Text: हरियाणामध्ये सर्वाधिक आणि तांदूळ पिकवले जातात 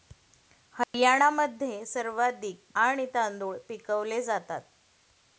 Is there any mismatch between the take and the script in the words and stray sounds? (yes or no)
yes